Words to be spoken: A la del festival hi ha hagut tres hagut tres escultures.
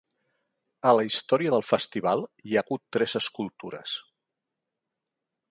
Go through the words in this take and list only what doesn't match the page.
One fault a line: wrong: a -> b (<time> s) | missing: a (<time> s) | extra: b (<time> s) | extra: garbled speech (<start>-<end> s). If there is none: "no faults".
extra: història (1.1 s)
missing: hagut tres (3.2 s)